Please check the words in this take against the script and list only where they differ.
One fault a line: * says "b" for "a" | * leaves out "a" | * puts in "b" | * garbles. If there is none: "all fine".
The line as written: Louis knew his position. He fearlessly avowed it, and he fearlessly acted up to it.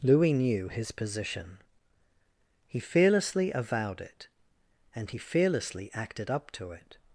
all fine